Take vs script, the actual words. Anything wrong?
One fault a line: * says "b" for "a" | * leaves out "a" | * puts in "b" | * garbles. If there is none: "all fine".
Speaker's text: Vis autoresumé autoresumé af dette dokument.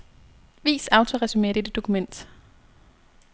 * leaves out "autoresumé"